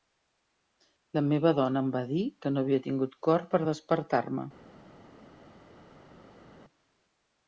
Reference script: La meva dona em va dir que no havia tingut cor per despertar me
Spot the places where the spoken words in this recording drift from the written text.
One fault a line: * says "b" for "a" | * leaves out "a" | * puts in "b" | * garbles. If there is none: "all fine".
all fine